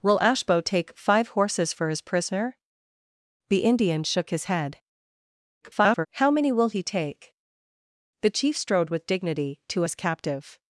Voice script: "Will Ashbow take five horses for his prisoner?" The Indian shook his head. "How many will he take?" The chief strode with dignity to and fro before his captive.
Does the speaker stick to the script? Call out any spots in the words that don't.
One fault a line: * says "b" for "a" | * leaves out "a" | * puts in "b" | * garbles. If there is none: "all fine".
* garbles
* leaves out "and fro before"